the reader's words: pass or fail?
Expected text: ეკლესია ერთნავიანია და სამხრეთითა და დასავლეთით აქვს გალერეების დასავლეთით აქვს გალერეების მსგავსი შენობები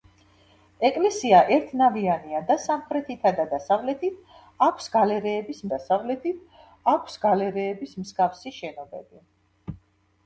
pass